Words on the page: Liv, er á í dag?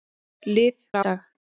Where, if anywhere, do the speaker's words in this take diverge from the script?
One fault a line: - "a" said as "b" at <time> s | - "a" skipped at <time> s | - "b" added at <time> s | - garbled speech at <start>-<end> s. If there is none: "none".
none